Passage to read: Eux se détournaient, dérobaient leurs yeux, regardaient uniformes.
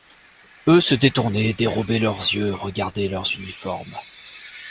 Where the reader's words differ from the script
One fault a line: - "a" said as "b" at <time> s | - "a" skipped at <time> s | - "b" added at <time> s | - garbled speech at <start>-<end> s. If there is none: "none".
- "leurs" added at 3.1 s